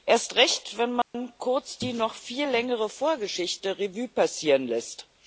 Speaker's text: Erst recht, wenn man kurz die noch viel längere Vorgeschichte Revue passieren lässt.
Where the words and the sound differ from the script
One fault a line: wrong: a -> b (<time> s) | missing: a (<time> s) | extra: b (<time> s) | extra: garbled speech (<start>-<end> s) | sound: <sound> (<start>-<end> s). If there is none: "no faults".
sound: dropout (1.0-1.1 s)